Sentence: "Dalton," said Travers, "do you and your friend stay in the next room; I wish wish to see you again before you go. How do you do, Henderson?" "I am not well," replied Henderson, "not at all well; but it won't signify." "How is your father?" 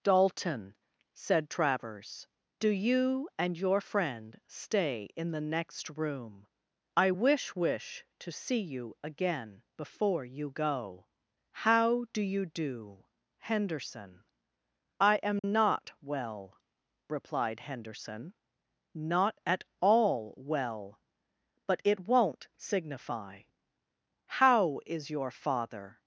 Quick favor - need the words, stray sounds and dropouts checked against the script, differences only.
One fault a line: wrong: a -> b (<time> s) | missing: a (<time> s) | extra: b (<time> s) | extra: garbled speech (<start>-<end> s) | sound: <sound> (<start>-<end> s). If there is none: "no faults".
sound: dropout (15.4-15.4 s)